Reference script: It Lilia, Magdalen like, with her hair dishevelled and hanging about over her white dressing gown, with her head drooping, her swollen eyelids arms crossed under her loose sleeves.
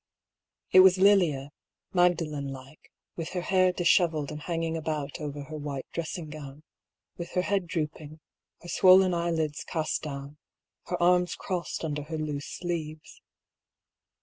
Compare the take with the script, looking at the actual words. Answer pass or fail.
fail